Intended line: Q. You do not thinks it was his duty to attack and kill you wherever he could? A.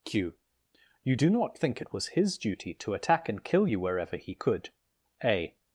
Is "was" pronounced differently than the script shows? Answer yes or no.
no